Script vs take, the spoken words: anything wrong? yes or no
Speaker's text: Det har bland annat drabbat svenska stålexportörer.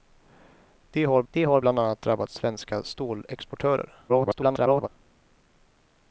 yes